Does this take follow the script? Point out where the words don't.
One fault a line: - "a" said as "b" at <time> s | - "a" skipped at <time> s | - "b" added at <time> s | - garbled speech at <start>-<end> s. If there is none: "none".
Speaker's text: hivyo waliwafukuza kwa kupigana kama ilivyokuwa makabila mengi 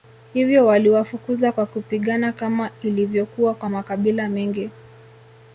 - "kwa" added at 3.5 s